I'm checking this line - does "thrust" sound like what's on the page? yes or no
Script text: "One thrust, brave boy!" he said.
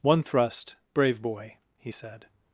yes